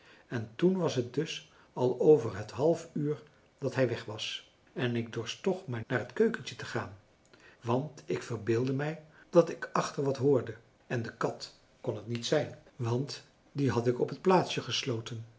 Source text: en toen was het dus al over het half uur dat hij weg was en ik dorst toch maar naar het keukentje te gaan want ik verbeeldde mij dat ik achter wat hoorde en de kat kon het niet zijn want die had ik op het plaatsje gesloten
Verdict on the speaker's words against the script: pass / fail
pass